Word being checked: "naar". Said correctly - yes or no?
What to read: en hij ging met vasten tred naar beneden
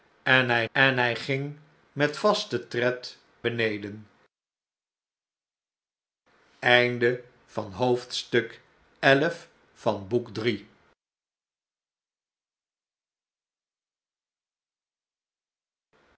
no